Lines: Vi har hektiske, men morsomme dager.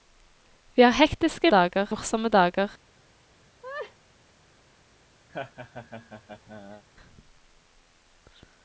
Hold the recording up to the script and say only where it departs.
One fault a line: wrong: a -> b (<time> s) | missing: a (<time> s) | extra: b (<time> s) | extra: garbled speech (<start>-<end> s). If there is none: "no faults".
wrong: men -> dager (1.5 s)